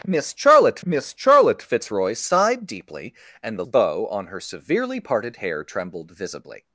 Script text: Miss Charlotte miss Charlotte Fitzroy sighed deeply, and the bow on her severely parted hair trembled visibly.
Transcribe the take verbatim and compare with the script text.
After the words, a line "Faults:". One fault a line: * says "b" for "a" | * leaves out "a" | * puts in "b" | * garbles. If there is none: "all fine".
Miss Charlotte miss Charlotte Fitzroy sighed deeply, and the bow on her severely parted hair trembled visibly.
Faults:
all fine